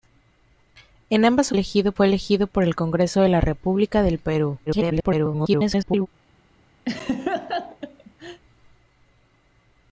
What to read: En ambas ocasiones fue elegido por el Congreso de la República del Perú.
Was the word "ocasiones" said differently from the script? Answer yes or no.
yes